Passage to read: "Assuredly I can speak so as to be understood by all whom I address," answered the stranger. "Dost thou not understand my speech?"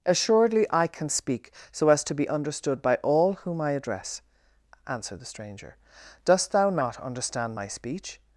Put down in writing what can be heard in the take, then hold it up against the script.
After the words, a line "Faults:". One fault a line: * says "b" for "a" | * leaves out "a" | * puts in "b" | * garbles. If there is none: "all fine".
"Assuredly I can speak so as to be understood by all whom I address," answered the stranger. "Dost thou not understand my speech?"
Faults:
all fine